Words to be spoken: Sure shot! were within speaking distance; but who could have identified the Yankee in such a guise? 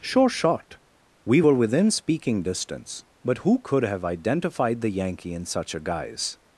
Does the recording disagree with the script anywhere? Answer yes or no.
yes